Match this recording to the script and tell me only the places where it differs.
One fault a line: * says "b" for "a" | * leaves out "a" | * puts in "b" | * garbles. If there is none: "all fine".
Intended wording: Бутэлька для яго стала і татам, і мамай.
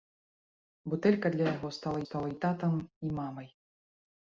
* puts in "стала"